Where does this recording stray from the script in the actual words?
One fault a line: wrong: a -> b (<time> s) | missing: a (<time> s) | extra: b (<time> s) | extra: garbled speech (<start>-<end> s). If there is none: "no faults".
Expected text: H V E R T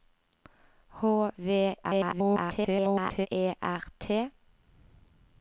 extra: garbled speech (1.8-3.3 s)